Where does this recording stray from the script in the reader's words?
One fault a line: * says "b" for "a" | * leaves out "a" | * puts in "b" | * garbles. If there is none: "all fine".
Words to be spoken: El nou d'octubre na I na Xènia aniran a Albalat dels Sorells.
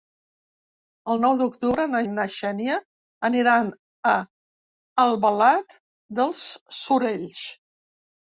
all fine